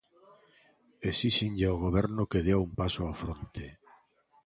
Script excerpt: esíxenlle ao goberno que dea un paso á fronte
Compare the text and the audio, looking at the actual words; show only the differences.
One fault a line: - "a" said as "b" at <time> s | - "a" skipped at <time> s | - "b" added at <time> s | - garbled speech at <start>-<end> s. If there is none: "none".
none